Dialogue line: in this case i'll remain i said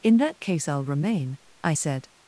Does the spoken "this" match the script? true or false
false